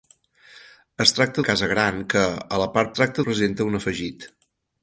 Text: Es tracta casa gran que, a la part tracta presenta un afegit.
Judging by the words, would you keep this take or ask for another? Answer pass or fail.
pass